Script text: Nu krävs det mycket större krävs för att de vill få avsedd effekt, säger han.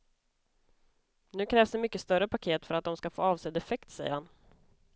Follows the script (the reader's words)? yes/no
no